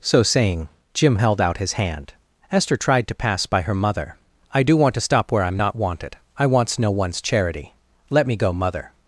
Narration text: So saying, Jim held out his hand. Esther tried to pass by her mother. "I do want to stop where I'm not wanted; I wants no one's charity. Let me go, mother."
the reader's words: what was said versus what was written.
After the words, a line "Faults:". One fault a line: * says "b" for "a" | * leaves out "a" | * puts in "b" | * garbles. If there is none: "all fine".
So saying, Jim held out his hand. Esther tried to pass by her mother. "I do want to stop where I'm not wanted; I wants no one's charity. Let me go, mother."
Faults:
all fine